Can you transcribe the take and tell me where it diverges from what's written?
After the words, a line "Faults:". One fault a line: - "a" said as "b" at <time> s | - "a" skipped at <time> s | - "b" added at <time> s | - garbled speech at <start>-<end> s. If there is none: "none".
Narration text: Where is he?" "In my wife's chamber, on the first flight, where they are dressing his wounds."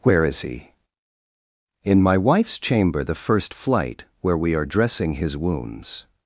Where is he?" "In my wife's chamber, the first flight, where we are dressing his wounds."
Faults:
- "on" skipped at 3.0 s
- "they" said as "we" at 4.4 s